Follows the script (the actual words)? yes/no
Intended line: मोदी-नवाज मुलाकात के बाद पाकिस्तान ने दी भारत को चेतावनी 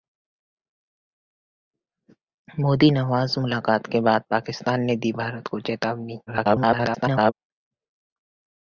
no